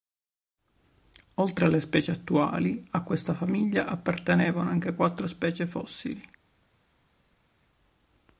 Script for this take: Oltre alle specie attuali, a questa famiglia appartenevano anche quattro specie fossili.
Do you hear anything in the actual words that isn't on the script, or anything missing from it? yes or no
no